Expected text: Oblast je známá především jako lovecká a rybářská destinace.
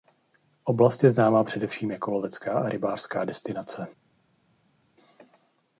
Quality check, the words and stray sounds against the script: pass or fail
pass